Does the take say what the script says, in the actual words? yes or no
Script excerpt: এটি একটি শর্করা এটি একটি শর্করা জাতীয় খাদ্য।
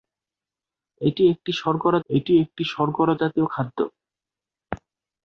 yes